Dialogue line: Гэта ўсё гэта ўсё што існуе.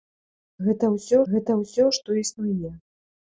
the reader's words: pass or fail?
pass